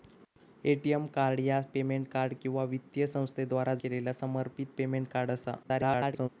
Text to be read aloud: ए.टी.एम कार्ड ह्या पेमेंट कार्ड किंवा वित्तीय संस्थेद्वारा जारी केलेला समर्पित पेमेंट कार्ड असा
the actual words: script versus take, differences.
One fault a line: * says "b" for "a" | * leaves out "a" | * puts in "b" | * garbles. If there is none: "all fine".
* leaves out "जारी"
* garbles